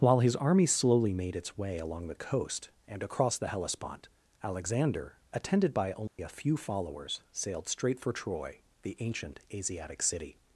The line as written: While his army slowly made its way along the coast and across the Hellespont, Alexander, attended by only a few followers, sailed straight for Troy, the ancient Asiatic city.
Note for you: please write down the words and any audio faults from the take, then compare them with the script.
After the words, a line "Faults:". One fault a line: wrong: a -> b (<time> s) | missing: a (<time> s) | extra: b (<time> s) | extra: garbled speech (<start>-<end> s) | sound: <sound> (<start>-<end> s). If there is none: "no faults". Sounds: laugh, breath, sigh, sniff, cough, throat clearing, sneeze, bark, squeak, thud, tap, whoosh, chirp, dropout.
While his army slowly made its way along the coast and across the Hellespont, Alexander, attended by only a few followers, sailed straight for Troy, the ancient Asiatic city.
Faults:
sound: dropout (6.1-6.2 s)